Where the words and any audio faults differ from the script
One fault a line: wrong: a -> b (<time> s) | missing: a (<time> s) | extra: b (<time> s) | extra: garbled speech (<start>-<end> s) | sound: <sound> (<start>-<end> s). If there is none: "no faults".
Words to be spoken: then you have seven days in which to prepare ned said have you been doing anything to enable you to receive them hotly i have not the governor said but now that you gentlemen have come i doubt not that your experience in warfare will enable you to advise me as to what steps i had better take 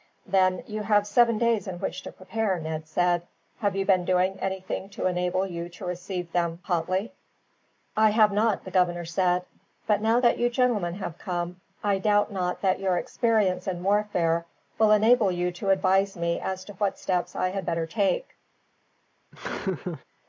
sound: laugh (19.3-20.0 s)